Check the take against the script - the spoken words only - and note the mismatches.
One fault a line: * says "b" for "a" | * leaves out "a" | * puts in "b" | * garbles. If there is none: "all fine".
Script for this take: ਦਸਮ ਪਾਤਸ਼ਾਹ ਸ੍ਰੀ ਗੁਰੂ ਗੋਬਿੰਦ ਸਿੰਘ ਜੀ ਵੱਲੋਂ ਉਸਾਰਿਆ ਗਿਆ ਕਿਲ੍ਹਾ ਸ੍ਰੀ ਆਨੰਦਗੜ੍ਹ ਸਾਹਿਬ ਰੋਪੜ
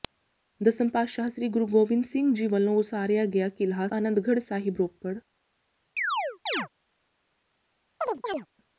* leaves out "ਸ੍ਰੀ"